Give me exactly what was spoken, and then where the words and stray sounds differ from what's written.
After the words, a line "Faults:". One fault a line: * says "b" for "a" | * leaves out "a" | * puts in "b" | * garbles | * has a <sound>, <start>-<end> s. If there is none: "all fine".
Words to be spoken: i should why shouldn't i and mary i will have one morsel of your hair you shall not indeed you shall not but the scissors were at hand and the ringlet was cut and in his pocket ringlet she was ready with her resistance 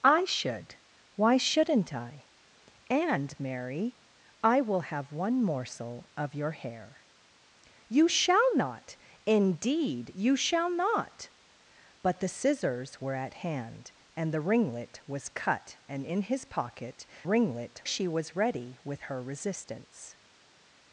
i should why shouldn't i and mary i will have one morsel of your hair you shall not indeed you shall not but the scissors were at hand and the ringlet was cut and in his pocket ringlet she was ready with her resistance
Faults:
all fine